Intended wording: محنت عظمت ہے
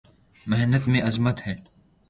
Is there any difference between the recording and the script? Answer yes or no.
yes